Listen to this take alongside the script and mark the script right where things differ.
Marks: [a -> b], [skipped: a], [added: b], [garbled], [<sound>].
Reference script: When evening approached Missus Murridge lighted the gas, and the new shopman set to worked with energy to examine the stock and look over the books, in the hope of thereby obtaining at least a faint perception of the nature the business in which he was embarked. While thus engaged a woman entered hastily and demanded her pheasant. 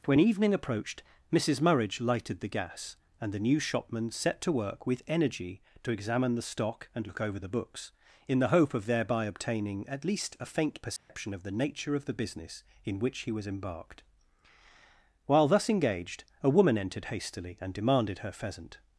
When evening approached Missus Murridge lighted the gas, and the new shopman set to [worked -> work] with energy to examine the stock and look over the books, in the hope of thereby obtaining at least a faint perception [dropout] of the nature [added: of] the business in which he was embarked. While thus engaged a woman entered hastily and demanded her pheasant.